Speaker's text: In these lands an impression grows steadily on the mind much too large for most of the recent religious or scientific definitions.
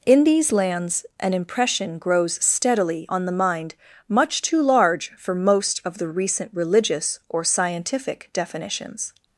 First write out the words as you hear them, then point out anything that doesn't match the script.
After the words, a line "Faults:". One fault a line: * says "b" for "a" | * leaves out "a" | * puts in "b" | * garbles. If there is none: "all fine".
In these lands an impression grows steadily on the mind much too large for most of the recent religious or scientific definitions.
Faults:
all fine